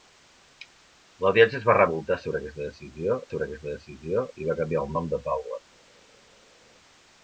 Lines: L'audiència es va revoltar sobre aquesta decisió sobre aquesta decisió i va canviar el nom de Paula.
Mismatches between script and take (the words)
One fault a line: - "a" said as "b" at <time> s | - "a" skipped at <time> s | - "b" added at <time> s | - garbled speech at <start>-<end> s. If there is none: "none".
none